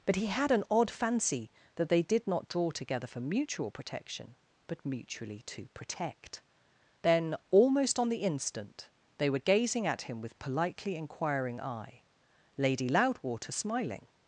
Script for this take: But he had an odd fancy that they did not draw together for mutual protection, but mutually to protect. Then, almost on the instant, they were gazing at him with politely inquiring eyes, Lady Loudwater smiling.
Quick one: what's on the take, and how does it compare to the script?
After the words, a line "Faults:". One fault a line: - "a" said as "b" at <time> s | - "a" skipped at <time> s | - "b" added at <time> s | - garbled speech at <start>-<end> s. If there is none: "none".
But he had an odd fancy that they did not draw together for mutual protection, but mutually to protect. Then, almost on the instant, they were gazing at him with politely inquiring eye, Lady Loudwater smiling.
Faults:
- "eyes" said as "eye" at 11.6 s